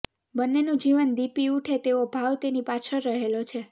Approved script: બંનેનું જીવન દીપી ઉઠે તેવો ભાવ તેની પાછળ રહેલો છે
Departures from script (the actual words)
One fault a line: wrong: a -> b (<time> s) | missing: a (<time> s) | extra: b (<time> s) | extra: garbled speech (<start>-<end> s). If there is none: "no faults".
no faults